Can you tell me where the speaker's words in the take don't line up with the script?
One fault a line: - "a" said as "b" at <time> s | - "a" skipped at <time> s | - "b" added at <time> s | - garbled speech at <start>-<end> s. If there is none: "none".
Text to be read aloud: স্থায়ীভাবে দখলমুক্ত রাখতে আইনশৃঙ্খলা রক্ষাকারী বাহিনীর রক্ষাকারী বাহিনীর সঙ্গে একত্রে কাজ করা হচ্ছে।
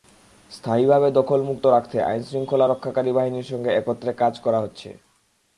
- "রক্ষাকারী বাহিনীর" skipped at 3.5 s